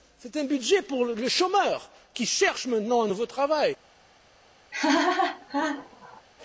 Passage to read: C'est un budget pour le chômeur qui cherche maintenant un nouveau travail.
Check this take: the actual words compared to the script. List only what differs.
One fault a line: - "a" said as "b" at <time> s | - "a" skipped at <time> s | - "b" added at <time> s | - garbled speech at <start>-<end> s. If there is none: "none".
none